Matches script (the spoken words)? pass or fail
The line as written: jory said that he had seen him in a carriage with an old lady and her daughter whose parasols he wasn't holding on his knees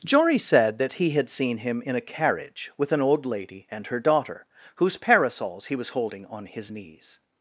fail